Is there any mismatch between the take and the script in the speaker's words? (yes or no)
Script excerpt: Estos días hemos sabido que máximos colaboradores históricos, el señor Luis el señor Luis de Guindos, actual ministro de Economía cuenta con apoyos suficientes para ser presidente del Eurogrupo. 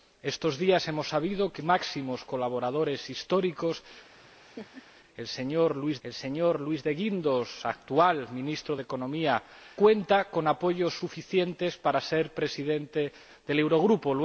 no